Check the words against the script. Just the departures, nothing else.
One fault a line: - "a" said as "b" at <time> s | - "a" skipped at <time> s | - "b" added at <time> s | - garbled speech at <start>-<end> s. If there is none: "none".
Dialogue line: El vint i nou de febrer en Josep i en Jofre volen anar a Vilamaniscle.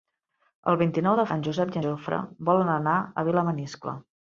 - "febrer" skipped at 1.3 s
- "en" skipped at 1.8 s